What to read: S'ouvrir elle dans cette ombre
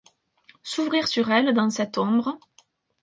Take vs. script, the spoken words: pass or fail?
fail